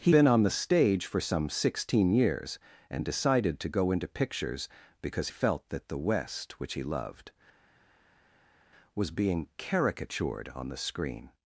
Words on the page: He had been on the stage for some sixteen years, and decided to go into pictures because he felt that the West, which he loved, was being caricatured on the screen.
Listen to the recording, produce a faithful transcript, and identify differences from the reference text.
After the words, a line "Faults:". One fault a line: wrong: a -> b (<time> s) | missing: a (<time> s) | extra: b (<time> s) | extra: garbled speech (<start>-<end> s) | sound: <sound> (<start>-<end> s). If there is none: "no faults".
He been on the stage for some sixteen years, and decided to go into pictures because felt that the West, which he loved, was being caricatured on the screen.
Faults:
missing: had (0.1 s)
missing: he (5.3 s)